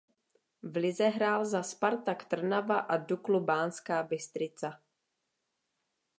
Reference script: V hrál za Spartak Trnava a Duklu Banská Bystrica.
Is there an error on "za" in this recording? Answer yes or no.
no